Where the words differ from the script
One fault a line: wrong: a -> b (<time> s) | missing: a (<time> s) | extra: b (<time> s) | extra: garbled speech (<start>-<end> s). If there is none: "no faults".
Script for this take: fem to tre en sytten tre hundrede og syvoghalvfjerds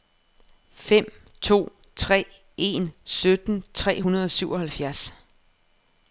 no faults